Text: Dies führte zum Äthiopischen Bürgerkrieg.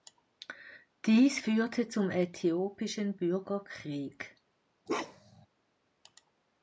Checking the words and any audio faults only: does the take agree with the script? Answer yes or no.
no